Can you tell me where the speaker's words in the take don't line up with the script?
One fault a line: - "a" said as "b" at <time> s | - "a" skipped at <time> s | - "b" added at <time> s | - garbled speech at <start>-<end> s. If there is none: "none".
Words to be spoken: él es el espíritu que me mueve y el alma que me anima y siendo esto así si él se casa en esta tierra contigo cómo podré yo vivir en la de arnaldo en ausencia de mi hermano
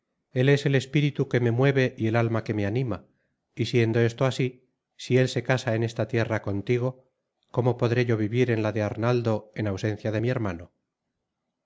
none